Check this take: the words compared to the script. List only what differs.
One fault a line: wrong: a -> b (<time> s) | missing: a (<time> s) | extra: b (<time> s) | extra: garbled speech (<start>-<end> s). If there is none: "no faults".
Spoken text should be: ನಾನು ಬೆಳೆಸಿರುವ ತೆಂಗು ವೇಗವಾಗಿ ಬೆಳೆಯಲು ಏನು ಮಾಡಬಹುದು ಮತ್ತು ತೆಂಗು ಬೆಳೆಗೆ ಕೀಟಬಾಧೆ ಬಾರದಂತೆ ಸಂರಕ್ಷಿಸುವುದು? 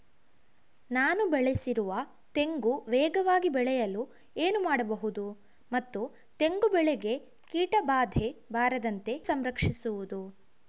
no faults